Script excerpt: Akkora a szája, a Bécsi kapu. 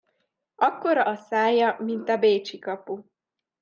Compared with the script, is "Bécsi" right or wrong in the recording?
right